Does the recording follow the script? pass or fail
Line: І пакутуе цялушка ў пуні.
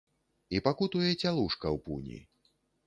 pass